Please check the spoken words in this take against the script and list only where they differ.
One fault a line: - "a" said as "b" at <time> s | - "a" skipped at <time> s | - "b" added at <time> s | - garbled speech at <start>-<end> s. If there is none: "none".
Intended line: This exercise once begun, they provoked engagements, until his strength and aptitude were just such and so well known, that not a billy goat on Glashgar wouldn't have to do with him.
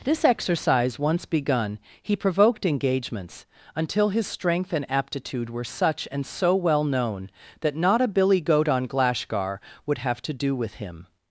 - "they" said as "he" at 2.0 s
- "just" skipped at 5.6 s
- "wouldn't" said as "would" at 9.8 s